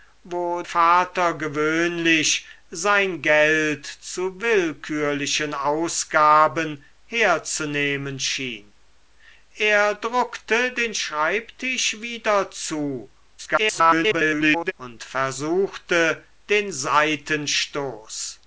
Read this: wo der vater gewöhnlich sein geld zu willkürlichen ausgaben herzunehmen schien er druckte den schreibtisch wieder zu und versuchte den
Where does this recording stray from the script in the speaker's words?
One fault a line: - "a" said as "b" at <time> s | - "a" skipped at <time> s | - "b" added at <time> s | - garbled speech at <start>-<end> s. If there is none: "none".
- "der" skipped at 0.6 s
- garbled speech at 13.4-14.7 s